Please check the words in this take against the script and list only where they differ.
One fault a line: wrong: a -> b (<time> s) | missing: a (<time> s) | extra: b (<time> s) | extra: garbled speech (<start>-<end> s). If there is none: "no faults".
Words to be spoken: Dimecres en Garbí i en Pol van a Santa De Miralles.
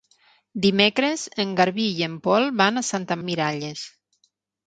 no faults